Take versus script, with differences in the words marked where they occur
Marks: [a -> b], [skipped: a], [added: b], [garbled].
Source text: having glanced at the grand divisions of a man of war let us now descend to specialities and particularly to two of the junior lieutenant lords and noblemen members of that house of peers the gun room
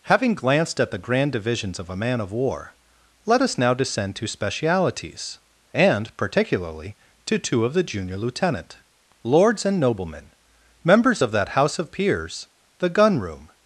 having glanced at the grand divisions of a man of war let us now descend to specialities and particularly to two of the junior lieutenant lords and noblemen members of that house of peers the gun room